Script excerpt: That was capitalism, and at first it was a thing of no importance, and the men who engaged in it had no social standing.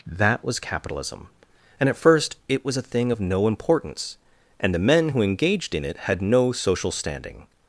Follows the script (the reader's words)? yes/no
yes